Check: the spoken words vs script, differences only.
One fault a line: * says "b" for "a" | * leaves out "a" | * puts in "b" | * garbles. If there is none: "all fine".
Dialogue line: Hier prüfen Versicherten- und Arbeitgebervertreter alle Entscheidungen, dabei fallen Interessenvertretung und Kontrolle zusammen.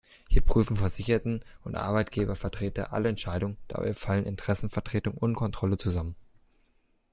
all fine